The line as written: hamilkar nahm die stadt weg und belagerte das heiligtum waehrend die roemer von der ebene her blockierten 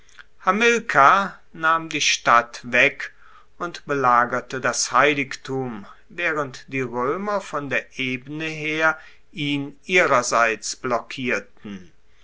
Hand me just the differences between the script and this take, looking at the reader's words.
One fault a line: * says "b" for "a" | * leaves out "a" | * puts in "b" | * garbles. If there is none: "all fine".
* puts in "ihn ihrerseits"